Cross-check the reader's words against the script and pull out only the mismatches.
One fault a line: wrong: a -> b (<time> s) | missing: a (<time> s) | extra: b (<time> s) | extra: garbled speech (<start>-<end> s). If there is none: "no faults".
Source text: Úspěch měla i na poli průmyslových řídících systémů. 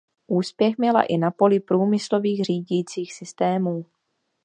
no faults